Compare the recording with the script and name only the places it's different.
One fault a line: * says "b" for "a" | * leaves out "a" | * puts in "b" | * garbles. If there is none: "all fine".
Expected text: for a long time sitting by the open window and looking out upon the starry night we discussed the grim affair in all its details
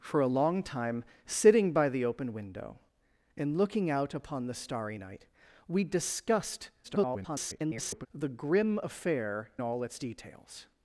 * garbles
* leaves out "in"